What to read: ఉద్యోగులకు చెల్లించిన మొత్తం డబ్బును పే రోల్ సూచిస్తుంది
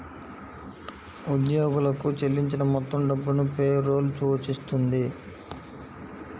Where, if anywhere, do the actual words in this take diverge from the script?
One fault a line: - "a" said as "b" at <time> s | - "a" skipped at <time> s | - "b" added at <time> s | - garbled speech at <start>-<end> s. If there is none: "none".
none